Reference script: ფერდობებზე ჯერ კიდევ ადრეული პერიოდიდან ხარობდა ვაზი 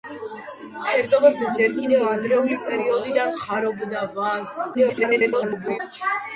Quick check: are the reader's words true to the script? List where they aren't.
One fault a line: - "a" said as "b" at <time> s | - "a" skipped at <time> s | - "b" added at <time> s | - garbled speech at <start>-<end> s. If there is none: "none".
- garbled speech at 4.7-5.8 s